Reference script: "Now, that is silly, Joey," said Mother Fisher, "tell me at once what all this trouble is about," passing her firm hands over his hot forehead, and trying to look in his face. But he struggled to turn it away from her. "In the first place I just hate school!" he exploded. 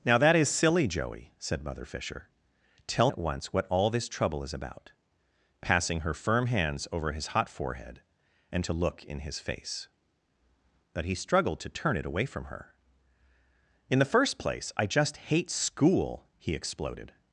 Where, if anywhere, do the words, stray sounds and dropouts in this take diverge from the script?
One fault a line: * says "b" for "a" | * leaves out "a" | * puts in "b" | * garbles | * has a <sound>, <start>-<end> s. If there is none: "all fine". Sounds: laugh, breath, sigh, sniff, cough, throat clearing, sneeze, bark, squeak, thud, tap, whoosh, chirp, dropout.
* leaves out "me"
* leaves out "trying"